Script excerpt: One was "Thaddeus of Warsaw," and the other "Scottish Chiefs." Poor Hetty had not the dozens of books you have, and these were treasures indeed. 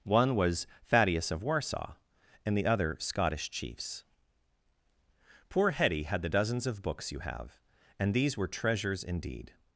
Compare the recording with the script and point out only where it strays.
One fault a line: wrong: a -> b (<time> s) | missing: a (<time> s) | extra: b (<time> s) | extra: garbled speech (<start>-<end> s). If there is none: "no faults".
missing: not (6.2 s)